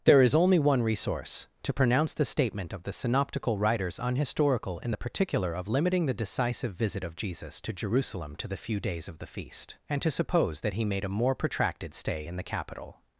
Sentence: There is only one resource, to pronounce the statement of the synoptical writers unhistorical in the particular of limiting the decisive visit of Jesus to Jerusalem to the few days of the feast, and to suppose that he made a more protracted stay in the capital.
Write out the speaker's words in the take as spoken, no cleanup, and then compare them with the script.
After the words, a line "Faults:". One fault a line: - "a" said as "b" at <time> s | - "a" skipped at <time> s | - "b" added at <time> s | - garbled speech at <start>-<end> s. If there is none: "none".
There is only one resource, to pronounce the statement of the synoptical writers unhistorical in the particular of limiting the decisive visit of Jesus to Jerusalem to the few days of the feast, and to suppose that he made a more protracted stay in the capital.
Faults:
none